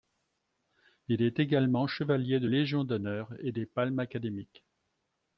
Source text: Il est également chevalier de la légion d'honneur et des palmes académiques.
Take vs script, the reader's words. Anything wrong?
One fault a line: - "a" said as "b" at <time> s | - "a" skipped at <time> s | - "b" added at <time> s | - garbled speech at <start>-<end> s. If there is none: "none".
- "la" skipped at 2.5 s